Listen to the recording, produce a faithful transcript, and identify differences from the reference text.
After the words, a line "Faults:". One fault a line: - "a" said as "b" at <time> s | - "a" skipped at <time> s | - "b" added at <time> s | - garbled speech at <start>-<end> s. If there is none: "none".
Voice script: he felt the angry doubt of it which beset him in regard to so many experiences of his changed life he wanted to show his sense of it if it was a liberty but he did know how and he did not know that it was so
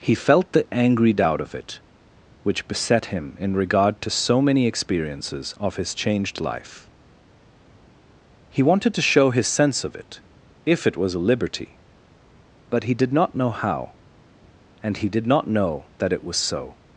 he felt the angry doubt of it which beset him in regard to so many experiences of his changed life he wanted to show his sense of it if it was a liberty but he did not know how and he did not know that it was so
Faults:
- "not" added at 13.1 s